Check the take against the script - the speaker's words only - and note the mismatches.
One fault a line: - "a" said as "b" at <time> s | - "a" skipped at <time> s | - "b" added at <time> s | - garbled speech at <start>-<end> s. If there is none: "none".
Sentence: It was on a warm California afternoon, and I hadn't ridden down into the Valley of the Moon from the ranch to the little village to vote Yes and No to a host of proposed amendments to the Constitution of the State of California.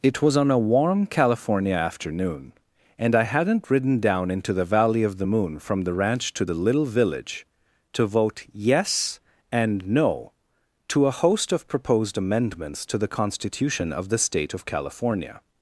none